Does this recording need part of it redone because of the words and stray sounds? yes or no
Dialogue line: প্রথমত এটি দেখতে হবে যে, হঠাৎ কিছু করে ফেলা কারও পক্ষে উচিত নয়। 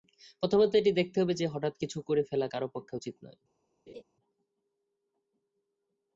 yes